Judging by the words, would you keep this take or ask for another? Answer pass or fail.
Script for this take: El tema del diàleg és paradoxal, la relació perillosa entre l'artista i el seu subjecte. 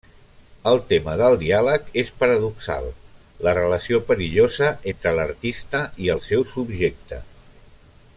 pass